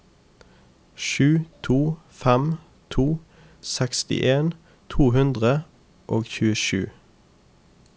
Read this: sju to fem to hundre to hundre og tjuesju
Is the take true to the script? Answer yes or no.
no